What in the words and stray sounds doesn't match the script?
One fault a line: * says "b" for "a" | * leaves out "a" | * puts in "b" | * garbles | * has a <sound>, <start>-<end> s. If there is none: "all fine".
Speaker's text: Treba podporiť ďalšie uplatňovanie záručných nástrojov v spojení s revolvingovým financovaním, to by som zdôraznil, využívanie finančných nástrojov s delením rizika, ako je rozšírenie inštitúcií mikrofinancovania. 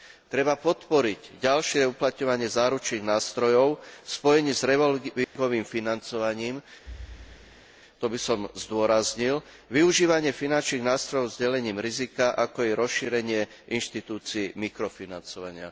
* has a dropout, 5.2-5.4 s
* has a thud, 6.9-7.7 s